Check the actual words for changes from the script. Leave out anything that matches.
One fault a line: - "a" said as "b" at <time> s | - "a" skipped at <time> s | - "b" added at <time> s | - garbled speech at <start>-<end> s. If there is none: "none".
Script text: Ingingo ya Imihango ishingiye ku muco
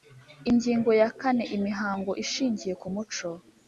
- "kane" added at 1.2 s